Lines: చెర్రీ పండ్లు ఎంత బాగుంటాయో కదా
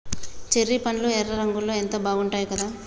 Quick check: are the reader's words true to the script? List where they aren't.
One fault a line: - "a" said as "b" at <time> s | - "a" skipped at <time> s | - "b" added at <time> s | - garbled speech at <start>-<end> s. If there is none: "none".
- "ఎర్ర రంగులో" added at 1.1 s